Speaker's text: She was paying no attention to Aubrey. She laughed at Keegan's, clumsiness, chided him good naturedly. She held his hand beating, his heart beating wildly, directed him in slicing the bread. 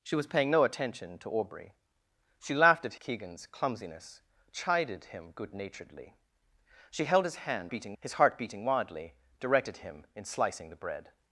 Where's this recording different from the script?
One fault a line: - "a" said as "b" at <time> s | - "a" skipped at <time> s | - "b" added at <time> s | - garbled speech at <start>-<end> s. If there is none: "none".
none